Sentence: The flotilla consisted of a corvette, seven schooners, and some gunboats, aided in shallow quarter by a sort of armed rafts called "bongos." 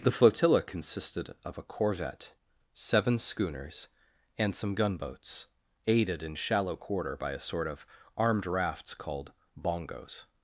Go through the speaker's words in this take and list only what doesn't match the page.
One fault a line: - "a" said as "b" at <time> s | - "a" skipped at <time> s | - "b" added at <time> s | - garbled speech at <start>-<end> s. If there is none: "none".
none